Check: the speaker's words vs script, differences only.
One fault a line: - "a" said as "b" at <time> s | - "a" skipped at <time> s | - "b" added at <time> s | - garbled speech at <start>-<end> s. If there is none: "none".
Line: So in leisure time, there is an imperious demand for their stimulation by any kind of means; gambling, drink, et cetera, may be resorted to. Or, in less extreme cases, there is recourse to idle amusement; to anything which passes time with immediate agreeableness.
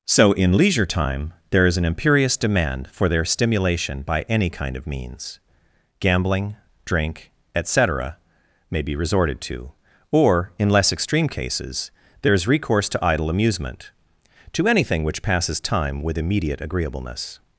none